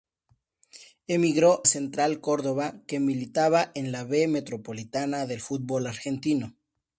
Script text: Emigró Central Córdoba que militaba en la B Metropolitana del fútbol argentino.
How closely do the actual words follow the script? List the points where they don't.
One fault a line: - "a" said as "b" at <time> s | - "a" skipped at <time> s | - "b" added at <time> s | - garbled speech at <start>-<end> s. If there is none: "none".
none